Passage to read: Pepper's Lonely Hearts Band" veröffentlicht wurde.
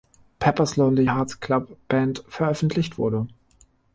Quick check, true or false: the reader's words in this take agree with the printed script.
false